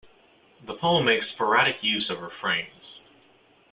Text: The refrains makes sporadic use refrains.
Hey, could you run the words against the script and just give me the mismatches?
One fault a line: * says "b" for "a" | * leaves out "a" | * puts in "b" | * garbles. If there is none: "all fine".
* says "poem" for "refrains"
* puts in "of"